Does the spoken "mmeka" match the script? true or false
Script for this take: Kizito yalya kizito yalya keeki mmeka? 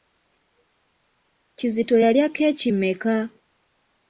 true